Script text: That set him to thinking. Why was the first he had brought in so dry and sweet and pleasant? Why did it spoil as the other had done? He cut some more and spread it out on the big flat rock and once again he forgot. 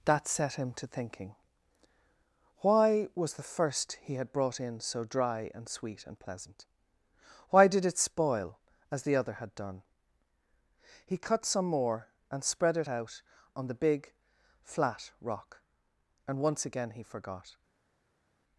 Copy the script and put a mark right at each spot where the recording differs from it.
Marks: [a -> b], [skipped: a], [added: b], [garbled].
That set him to thinking. Why was the first he had brought in so dry and sweet and pleasant? Why did it spoil as the other had done? He cut some more and spread it out on the big flat rock and once again he forgot.